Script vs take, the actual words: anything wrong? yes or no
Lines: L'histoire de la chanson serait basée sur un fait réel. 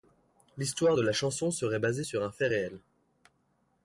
no